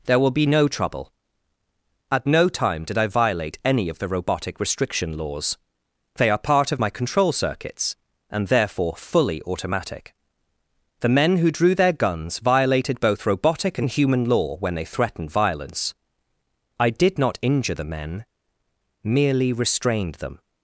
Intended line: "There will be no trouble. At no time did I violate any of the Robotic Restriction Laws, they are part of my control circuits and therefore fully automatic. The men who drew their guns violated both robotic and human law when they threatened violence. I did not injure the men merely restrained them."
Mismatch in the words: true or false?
false